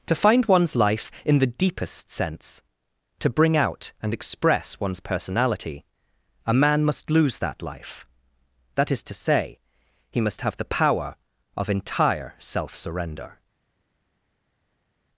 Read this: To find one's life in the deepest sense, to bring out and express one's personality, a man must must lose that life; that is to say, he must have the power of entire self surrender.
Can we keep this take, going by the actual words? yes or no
no